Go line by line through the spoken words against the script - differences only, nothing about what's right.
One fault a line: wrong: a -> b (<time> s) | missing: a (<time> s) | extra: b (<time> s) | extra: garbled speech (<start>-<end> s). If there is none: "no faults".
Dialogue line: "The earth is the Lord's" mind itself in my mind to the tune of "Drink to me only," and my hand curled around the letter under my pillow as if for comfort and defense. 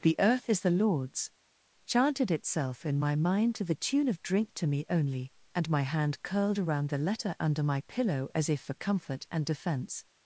wrong: mind -> chanted (1.9 s)